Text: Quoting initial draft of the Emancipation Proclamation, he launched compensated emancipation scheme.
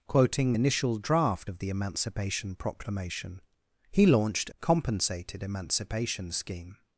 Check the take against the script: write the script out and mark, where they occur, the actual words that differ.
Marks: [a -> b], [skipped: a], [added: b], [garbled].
Quoting initial draft of the Emancipation Proclamation, he launched compensated emancipation scheme.